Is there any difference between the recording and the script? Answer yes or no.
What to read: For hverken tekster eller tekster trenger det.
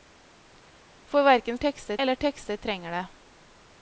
no